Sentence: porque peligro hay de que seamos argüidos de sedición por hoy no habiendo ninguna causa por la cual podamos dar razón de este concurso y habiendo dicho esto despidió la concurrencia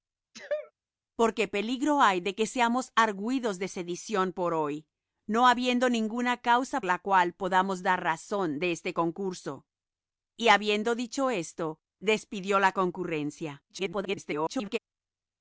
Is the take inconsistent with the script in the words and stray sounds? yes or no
yes